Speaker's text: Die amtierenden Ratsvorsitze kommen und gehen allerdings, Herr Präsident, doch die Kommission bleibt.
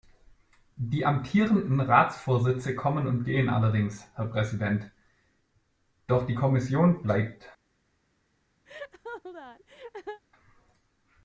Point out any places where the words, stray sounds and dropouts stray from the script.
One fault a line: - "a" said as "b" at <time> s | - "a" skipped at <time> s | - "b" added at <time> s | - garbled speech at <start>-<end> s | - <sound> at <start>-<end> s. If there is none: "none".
- laugh at 8.7-10.2 s